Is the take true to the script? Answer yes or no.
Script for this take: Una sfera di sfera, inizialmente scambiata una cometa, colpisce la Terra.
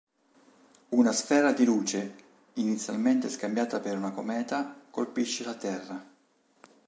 no